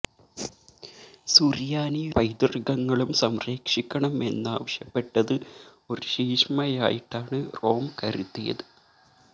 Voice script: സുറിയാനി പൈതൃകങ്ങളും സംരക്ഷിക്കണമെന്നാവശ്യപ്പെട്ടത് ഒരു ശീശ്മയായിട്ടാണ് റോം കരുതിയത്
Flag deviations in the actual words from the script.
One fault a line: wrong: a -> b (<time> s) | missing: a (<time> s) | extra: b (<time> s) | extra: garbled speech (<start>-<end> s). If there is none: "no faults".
no faults